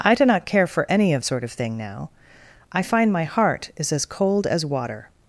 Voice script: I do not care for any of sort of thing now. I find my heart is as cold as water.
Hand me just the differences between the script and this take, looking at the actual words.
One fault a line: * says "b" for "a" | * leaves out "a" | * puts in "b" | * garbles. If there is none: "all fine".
all fine